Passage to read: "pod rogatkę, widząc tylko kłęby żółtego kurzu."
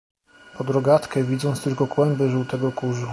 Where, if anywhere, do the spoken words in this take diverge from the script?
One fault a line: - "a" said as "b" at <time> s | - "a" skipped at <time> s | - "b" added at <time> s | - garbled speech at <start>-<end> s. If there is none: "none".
none